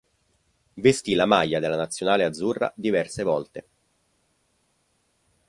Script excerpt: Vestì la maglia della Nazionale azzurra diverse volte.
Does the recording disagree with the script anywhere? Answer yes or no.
no